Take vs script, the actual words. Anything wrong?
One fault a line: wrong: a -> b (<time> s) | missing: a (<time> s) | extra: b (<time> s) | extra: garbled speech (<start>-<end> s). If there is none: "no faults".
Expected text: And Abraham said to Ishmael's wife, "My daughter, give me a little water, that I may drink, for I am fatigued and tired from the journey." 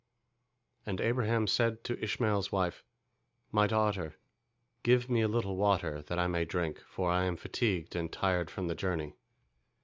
no faults